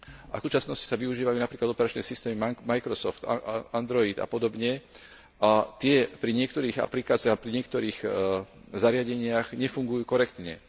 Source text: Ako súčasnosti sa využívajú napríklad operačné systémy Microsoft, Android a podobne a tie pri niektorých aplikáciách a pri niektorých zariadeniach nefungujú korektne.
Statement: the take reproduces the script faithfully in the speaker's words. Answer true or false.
true